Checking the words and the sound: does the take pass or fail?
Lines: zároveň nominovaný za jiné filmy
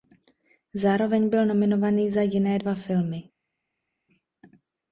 fail